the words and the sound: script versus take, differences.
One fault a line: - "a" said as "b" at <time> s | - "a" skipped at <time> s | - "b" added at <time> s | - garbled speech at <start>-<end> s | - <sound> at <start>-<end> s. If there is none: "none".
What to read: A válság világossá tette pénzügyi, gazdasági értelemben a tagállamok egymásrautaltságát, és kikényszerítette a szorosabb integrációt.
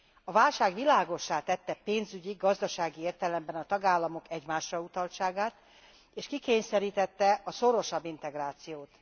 none